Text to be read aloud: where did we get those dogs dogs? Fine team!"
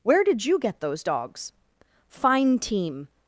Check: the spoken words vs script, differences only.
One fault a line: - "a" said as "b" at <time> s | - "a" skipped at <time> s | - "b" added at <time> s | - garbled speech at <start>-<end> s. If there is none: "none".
- "we" said as "you" at 0.5 s
- "dogs" skipped at 1.5 s